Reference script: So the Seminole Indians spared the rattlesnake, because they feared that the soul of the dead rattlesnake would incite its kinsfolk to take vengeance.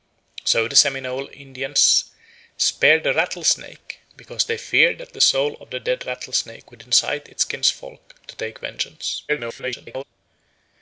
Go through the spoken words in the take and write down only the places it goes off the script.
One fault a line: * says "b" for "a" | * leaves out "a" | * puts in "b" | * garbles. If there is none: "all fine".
* garbles